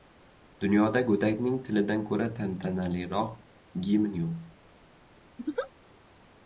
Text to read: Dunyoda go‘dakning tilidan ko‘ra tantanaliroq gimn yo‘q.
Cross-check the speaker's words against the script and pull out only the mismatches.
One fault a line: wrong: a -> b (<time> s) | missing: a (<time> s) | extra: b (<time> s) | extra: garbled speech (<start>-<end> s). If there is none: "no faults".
no faults